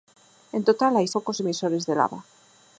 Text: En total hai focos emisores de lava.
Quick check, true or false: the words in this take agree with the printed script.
true